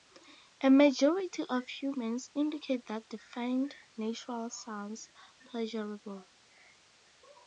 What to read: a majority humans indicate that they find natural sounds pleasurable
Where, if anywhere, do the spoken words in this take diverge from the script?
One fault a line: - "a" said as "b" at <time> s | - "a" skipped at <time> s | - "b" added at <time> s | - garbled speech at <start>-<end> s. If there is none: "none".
- "of" added at 1.5 s